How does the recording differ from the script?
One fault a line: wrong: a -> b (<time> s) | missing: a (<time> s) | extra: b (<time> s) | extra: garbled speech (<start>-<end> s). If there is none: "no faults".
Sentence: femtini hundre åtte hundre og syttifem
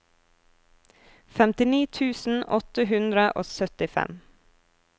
wrong: hundre -> tusen (2.0 s)